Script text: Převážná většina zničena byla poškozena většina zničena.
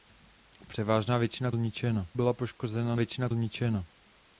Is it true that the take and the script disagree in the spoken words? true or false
false